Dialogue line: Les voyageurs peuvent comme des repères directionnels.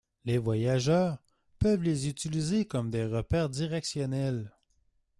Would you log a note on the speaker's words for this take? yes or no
yes